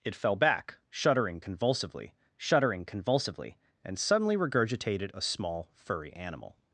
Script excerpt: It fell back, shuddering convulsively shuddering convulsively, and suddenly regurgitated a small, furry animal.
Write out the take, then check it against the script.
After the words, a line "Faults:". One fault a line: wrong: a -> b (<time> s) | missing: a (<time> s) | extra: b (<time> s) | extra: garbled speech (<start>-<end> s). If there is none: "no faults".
It fell back, shuddering convulsively shuddering convulsively, and suddenly regurgitated a small, furry animal.
Faults:
no faults